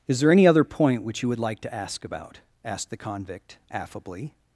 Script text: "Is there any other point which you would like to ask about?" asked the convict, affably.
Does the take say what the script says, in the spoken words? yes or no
yes